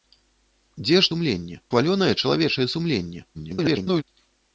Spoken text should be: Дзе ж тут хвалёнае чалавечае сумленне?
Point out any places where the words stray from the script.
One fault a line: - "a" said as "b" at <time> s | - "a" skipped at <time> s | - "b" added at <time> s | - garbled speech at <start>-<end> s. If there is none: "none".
- "тут" said as "сумленне" at 1.1 s
- garbled speech at 3.3-4.0 s